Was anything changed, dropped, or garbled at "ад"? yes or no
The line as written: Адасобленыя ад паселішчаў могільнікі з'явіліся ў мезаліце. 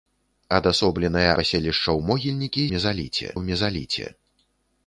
yes